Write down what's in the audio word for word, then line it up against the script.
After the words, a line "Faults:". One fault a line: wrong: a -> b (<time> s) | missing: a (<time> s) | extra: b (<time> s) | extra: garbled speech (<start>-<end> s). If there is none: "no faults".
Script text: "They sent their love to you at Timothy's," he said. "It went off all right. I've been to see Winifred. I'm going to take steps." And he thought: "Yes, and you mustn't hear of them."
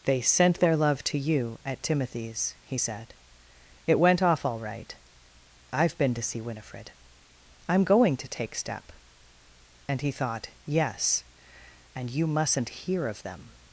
"They sent their love to you at Timothy's," he said. "It went off all right. I've been to see Winifred. I'm going to take step." And he thought: "Yes, and you mustn't hear of them."
Faults:
wrong: steps -> step (8.5 s)